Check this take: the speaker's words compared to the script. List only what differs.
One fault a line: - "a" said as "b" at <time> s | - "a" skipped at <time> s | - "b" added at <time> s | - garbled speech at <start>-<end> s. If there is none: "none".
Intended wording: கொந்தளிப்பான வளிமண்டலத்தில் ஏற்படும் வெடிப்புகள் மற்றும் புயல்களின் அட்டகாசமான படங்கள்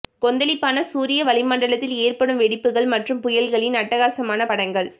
- "சூரிய" added at 0.8 s